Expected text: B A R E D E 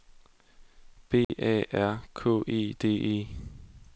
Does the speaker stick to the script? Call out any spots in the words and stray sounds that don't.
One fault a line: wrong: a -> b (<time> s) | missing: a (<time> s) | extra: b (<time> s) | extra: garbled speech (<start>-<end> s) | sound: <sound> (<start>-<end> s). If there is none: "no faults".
sound: dropout (1.2-1.3 s)
extra: K (2.1 s)